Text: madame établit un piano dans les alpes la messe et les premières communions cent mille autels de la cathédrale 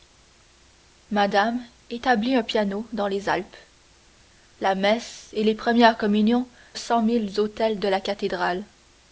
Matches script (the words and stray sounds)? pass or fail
pass